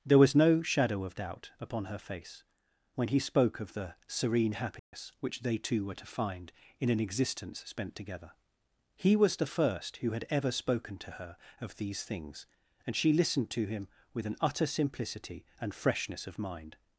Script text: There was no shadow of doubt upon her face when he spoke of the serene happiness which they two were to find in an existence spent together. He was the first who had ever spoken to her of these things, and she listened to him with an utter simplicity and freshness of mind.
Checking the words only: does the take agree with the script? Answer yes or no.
yes